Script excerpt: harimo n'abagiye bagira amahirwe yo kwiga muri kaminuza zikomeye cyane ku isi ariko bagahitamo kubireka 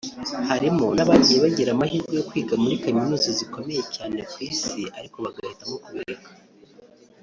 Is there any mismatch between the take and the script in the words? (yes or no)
no